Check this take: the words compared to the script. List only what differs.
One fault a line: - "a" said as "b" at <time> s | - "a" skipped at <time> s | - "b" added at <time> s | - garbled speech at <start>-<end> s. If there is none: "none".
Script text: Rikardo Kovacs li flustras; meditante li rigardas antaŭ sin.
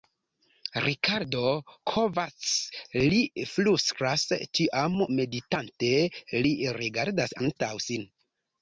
- "tiam" added at 4.6 s